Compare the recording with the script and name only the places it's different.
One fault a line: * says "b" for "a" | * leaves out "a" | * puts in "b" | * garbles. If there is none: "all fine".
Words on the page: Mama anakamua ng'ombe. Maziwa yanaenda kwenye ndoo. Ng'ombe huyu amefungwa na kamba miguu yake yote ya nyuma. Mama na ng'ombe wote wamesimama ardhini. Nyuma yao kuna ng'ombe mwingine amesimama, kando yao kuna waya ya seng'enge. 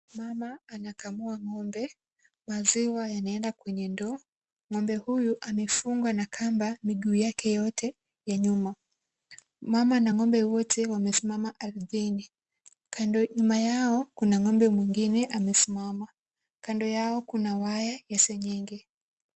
all fine